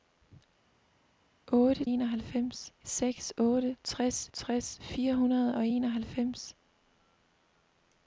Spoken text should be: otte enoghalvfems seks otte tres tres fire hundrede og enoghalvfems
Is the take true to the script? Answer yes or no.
yes